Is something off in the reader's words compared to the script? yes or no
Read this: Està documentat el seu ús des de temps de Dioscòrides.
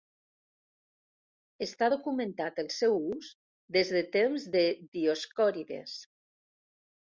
no